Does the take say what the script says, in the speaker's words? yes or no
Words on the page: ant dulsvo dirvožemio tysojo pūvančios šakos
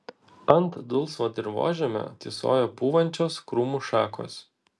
no